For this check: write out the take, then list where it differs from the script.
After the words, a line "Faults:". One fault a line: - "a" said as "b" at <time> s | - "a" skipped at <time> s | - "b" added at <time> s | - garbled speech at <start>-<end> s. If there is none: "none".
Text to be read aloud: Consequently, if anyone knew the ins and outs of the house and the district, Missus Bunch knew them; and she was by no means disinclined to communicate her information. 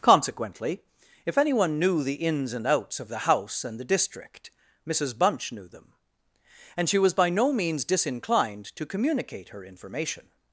Consequently, if anyone knew the ins and outs of the house and the district, Missus Bunch knew them; and she was by no means disinclined to communicate her information.
Faults:
none